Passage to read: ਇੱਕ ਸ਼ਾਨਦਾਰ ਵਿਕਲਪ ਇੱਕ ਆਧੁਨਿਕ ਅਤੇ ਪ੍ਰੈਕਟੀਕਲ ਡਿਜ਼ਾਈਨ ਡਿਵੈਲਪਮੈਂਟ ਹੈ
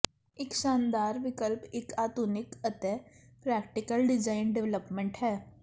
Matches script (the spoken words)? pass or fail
pass